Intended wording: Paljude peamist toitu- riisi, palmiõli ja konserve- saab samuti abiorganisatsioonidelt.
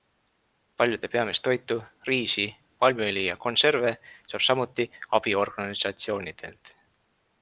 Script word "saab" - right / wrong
right